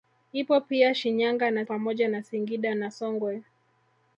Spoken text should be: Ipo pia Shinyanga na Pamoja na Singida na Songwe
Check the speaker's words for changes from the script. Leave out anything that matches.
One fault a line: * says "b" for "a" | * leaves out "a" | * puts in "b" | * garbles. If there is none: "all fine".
all fine